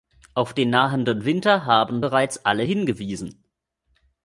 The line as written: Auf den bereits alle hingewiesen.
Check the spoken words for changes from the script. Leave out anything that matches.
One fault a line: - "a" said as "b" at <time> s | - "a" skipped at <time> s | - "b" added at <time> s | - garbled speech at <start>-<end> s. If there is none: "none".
- "nahenden Winter haben" added at 0.7 s